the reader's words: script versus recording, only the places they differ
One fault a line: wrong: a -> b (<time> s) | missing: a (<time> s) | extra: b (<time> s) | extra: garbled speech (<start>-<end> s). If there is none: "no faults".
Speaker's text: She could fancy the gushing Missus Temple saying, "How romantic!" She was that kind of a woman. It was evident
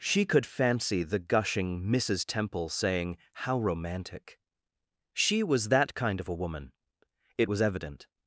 no faults